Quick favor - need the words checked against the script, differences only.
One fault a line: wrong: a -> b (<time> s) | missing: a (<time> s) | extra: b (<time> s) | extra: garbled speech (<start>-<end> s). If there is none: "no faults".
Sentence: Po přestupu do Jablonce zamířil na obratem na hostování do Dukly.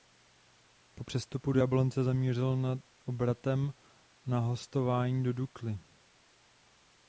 no faults